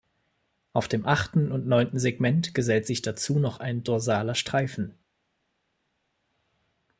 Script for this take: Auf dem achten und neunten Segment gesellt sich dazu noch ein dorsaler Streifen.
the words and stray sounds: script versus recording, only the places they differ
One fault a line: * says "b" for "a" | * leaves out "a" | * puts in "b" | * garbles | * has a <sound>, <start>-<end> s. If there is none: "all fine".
all fine